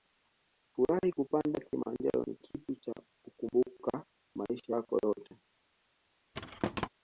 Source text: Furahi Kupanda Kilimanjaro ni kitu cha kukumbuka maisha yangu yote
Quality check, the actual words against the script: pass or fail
fail